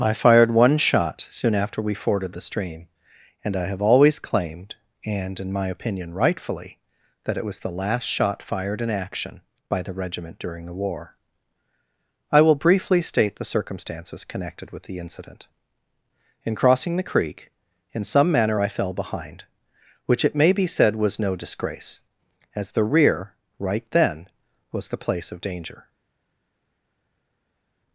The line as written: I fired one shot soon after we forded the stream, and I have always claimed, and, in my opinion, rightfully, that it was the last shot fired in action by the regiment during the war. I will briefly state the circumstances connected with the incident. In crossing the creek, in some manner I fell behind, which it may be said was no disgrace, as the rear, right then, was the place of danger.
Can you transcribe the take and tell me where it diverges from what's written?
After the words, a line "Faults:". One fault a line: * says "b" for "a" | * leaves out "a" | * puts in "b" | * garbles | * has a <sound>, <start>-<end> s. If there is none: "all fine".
I fired one shot soon after we forded the stream, and I have always claimed, and, in my opinion, rightfully, that it was the last shot fired in action by the regiment during the war. I will briefly state the circumstances connected with the incident. In crossing the creek, in some manner I fell behind, which it may be said was no disgrace, as the rear, right then, was the place of danger.
Faults:
all fine